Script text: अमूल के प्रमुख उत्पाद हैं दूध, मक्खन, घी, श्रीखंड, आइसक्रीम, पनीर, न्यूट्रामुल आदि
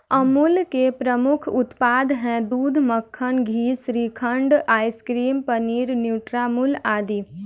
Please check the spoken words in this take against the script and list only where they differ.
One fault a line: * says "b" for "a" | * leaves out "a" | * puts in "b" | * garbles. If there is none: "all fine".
all fine